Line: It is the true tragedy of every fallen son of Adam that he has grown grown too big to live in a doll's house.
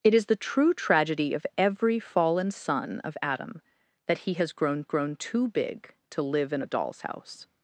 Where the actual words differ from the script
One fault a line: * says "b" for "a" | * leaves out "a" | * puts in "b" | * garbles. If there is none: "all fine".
all fine